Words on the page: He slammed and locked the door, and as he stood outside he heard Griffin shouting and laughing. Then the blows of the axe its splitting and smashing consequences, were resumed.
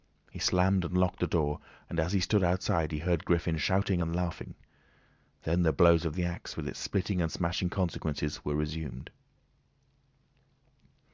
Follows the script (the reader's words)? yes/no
no